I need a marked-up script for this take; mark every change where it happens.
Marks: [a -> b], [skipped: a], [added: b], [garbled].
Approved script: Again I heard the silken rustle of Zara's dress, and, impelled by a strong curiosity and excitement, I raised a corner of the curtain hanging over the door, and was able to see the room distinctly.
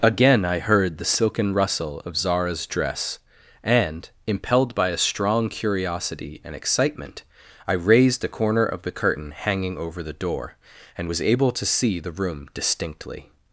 Again I heard the silken rustle of Zara's dress, and, impelled by a strong curiosity and excitement, I raised a corner of the curtain hanging over the door, and was able to see the room distinctly.